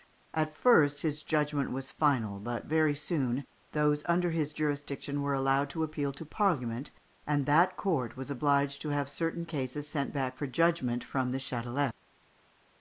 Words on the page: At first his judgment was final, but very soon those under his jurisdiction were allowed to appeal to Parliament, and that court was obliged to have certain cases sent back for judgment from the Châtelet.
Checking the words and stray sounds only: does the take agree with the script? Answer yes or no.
yes